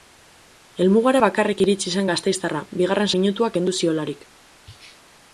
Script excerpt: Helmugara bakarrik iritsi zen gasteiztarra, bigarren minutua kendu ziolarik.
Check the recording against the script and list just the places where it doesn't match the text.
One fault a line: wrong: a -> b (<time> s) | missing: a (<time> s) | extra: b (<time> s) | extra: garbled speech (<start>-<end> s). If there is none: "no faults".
no faults